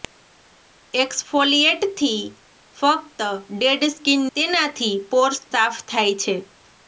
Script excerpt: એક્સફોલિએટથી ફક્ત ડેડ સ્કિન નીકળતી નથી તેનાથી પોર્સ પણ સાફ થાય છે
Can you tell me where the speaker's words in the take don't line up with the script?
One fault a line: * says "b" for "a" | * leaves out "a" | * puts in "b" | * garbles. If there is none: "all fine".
* leaves out "નીકળતી નથી"
* leaves out "પણ"